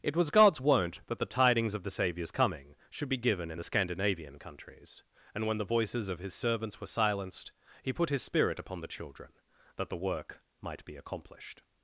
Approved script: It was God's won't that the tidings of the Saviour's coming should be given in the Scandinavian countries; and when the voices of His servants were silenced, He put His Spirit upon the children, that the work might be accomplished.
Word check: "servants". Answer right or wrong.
right